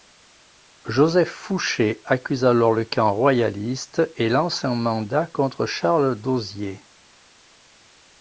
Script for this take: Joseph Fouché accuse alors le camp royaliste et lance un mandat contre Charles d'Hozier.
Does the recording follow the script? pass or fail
pass